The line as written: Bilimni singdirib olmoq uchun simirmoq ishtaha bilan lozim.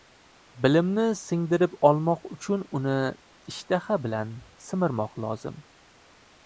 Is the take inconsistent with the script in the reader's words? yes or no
yes